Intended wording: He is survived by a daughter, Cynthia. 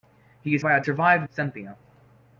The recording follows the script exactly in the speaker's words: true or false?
false